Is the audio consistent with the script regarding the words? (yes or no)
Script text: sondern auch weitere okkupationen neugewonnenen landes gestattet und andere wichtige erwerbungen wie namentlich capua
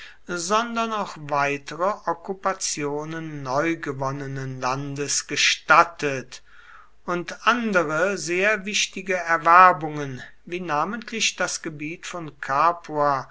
no